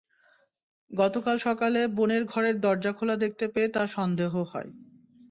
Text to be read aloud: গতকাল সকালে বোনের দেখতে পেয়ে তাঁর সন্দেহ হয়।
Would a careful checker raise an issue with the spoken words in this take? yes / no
yes